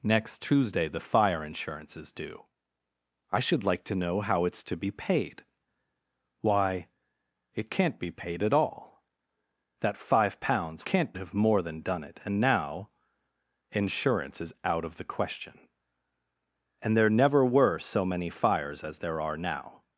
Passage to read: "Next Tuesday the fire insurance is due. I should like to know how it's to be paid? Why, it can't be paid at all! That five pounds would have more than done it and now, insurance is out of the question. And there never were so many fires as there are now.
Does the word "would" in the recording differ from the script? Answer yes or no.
yes